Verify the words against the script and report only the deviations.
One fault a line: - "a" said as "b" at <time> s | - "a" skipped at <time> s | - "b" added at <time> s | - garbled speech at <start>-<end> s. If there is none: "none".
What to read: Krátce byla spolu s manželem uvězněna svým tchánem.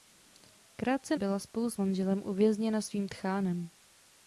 none